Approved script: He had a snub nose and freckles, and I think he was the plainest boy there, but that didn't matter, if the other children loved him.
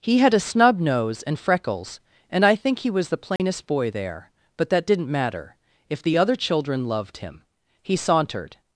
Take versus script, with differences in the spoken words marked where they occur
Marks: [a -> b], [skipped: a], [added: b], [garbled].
He had a snub nose and freckles, and I think he was the plainest boy there, but that didn't matter, if the other children loved him. [added: He sauntered]